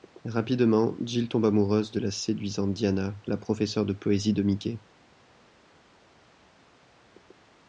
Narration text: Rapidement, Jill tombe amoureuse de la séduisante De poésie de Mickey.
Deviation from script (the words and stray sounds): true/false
true